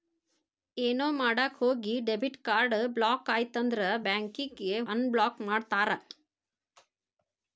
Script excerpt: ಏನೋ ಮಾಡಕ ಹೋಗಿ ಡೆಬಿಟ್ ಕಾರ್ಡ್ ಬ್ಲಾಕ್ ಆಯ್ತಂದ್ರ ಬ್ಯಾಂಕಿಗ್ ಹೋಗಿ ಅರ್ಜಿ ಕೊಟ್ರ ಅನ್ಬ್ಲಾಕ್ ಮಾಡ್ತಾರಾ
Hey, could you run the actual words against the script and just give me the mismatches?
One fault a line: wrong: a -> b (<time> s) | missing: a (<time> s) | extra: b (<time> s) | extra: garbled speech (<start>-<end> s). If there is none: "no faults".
missing: ಹೋಗಿ ಅರ್ಜಿ ಕೊಟ್ರ (4.6 s)